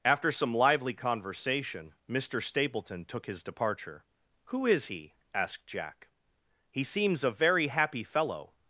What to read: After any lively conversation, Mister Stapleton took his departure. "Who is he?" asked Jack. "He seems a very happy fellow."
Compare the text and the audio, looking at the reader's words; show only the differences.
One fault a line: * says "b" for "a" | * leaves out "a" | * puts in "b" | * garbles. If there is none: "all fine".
* says "some" for "any"